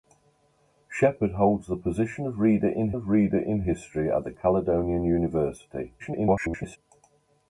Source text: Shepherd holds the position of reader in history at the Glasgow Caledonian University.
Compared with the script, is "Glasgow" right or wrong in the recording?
wrong